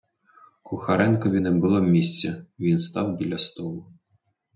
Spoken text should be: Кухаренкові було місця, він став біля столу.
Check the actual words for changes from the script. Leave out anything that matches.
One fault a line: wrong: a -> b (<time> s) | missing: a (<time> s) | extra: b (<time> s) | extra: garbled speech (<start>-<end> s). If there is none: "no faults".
extra: не (1.4 s)